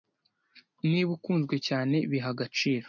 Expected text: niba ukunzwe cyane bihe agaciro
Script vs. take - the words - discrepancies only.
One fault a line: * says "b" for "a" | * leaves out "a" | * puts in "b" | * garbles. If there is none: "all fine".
all fine